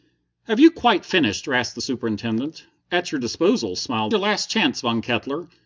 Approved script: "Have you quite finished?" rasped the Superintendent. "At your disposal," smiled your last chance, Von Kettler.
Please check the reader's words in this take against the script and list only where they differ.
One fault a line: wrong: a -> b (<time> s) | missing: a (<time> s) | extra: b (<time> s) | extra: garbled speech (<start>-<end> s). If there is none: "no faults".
no faults